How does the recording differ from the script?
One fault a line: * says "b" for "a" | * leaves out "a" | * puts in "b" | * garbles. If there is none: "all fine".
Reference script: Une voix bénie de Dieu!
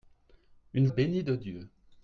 * leaves out "voix"